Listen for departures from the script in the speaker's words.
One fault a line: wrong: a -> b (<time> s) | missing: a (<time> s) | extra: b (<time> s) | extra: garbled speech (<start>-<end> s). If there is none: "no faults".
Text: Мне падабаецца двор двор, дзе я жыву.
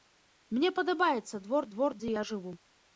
no faults